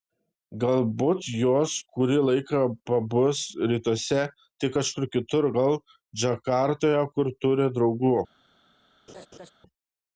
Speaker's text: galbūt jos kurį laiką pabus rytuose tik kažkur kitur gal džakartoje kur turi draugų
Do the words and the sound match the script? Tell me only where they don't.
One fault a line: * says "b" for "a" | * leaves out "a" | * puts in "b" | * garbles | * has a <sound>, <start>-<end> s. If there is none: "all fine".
* has a laugh, 9.1-9.5 s